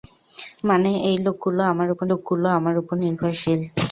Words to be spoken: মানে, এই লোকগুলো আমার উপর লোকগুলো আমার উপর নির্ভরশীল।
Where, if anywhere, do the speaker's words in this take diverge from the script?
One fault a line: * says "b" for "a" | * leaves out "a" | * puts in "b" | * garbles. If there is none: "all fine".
all fine